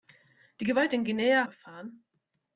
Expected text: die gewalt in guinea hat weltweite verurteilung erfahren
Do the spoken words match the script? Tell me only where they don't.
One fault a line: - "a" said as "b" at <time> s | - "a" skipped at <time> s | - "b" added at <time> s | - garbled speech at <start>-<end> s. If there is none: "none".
- "hat weltweite verurteilung" skipped at 1.5 s